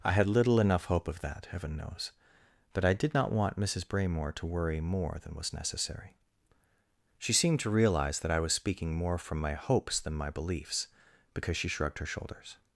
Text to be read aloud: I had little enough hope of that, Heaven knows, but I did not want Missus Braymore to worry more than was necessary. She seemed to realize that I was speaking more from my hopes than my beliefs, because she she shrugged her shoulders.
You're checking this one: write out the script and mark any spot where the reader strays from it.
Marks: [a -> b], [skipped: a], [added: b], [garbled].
I had little enough hope of that, Heaven knows, but I did not want Missus Braymore to worry more than was necessary. She seemed to realize that I was speaking more from my hopes than my beliefs, because she [skipped: she] shrugged her shoulders.